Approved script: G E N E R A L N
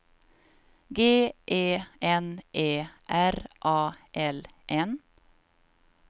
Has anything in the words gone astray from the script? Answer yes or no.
no